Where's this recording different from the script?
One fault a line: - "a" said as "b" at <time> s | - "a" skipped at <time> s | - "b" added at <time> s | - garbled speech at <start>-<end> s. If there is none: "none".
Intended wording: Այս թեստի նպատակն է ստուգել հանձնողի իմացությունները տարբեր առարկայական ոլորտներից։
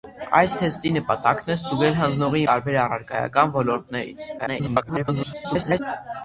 - "իմացությունները" skipped at 2.4 s
- garbled speech at 4.4-5.8 s